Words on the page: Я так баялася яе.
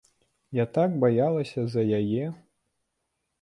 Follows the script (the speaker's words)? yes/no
no